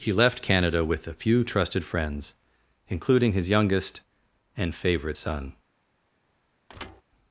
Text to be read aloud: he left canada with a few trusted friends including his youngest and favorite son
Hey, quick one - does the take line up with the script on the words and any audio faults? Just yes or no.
no